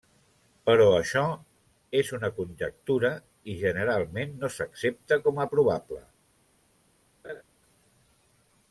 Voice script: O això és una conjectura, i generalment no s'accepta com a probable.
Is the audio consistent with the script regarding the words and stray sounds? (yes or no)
no